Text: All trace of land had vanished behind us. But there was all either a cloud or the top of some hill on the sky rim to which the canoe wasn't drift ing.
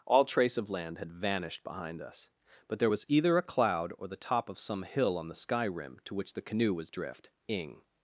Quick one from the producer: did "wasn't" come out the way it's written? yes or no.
no